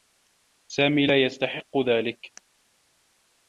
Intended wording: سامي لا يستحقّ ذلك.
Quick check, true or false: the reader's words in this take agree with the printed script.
true